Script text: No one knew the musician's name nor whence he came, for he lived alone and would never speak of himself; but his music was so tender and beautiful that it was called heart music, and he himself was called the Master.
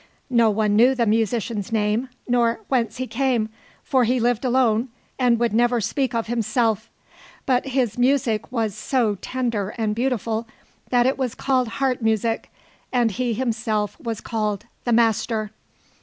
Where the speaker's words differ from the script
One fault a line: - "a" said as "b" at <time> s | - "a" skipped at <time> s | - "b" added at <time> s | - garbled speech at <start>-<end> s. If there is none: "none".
none